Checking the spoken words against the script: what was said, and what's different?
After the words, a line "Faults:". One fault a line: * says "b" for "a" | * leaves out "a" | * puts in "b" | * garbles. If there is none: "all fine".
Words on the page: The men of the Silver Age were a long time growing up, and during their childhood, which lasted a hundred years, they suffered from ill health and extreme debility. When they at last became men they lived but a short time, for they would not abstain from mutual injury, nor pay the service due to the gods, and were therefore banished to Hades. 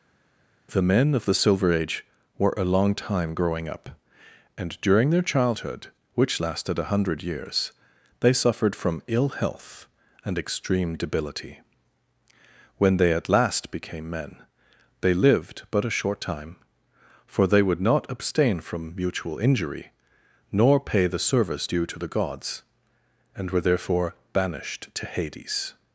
The men of the Silver Age were a long time growing up, and during their childhood, which lasted a hundred years, they suffered from ill health and extreme debility. When they at last became men they lived but a short time, for they would not abstain from mutual injury, nor pay the service due to the gods, and were therefore banished to Hades.
Faults:
all fine